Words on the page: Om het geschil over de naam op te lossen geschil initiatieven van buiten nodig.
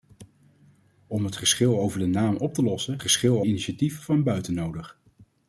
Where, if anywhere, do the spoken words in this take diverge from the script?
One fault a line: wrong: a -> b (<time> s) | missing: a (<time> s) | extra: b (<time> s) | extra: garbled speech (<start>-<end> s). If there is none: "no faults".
no faults